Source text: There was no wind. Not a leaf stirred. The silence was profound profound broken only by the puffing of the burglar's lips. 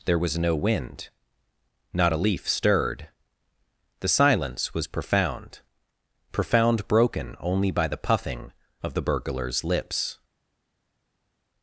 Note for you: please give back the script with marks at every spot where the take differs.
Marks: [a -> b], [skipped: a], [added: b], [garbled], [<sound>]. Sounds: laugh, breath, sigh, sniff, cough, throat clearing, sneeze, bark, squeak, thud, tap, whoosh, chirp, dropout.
There was no wind. Not a leaf stirred. The silence was profound profound broken only by the puffing of the burglar's lips.